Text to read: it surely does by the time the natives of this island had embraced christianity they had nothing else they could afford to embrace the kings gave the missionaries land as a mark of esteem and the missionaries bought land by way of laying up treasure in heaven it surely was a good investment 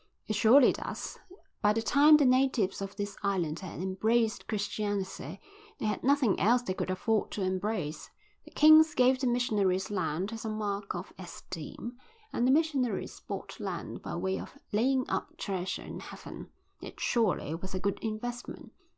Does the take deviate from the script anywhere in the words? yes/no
no